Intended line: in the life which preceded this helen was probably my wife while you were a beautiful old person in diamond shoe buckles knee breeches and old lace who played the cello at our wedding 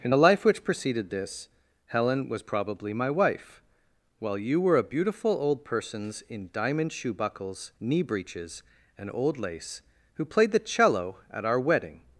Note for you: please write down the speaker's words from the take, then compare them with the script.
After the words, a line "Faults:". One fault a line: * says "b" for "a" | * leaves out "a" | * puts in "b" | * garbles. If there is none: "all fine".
in the life which preceded this helen was probably my wife while you were a beautiful old persons in diamond shoe buckles knee breeches and old lace who played the cello at our wedding
Faults:
* says "persons" for "person"